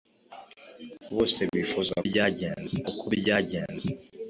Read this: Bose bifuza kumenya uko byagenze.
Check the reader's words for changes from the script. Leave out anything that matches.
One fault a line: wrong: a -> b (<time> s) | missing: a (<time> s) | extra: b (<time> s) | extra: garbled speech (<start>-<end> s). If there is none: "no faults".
wrong: kumenya -> byagenze (2.1 s)